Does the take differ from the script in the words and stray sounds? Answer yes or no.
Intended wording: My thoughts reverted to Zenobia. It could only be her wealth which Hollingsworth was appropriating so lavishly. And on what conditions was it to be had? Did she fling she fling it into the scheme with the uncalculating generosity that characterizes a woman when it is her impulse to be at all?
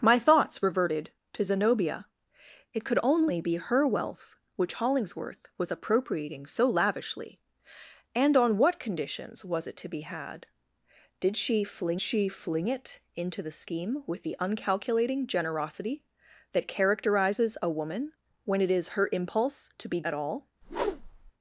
yes